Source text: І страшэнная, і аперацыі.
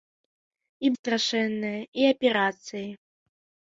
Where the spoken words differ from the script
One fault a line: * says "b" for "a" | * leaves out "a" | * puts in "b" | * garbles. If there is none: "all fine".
all fine